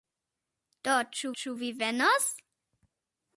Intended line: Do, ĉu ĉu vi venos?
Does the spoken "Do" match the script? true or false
true